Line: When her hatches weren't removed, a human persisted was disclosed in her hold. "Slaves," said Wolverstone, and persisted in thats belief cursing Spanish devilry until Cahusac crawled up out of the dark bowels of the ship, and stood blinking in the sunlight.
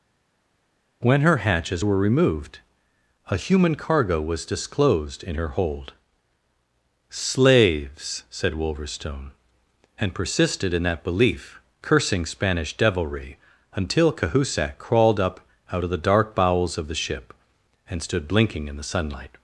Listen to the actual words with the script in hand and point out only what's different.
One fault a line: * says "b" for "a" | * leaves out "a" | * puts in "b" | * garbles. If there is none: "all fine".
* says "were" for "weren't"
* says "cargo" for "persisted"
* says "that" for "thats"